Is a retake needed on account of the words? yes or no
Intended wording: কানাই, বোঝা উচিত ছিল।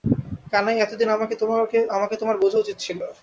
yes